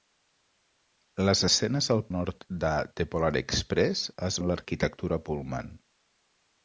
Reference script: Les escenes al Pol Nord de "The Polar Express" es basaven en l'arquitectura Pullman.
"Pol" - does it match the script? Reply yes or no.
no